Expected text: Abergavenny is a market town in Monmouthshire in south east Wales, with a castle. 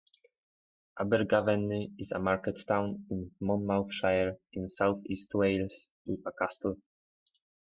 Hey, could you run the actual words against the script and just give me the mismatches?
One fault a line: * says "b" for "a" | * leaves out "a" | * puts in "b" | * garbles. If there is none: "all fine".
all fine